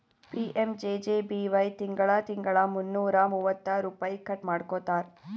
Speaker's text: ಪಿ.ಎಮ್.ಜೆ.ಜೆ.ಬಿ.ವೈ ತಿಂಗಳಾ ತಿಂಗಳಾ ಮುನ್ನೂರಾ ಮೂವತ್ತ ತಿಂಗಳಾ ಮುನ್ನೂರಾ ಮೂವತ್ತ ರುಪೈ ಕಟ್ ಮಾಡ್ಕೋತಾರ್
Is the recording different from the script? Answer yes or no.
yes